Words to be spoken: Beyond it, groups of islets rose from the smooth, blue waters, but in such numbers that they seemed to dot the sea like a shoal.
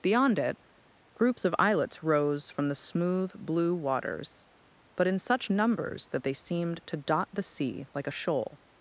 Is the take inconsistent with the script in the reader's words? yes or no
no